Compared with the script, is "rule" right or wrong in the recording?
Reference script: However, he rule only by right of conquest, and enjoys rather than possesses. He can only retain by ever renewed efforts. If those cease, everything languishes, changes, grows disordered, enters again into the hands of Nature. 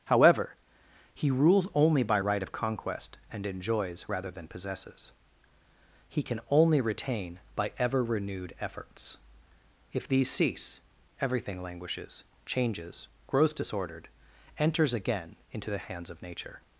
wrong